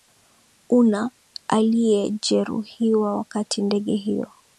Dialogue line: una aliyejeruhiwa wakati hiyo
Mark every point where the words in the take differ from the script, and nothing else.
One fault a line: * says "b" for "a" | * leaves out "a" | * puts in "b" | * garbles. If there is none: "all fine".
* puts in "ndege"